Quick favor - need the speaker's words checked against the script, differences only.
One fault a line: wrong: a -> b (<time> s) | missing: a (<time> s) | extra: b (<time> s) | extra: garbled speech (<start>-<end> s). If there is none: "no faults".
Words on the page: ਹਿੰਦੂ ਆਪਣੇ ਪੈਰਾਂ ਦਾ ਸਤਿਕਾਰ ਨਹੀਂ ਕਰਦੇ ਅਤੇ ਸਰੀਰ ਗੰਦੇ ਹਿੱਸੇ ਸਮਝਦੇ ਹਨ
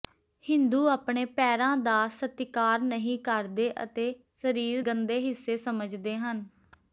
no faults